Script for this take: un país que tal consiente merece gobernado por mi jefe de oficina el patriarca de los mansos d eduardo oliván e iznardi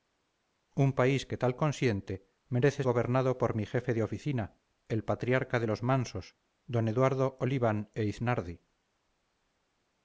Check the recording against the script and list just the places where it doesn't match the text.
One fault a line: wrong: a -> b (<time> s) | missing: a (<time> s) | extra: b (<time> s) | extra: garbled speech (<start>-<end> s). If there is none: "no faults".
no faults